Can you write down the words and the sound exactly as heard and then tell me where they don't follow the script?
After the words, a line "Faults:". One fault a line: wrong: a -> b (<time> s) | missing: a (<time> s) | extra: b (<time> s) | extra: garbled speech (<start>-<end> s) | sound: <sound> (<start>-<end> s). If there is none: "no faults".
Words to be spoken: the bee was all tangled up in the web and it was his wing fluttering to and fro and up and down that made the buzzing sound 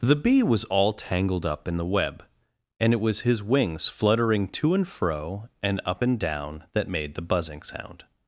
the bee was all tangled up in the web and it was his wings fluttering to and fro and up and down that made the buzzing sound
Faults:
wrong: wing -> wings (3.4 s)